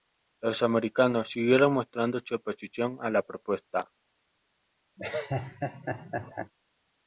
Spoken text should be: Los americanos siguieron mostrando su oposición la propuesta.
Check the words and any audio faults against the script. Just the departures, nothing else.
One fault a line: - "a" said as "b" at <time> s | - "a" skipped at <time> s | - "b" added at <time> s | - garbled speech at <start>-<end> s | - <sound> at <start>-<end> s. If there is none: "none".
- "a" added at 3.0 s
- laugh at 5.0-6.5 s